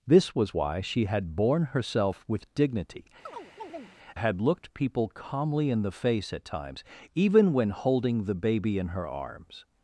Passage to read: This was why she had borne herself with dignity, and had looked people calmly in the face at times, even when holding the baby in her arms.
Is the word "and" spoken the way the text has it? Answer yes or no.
no